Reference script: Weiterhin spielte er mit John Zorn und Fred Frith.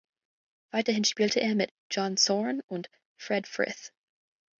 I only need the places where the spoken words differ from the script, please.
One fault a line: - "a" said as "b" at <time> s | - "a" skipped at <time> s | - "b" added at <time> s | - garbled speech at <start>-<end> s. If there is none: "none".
none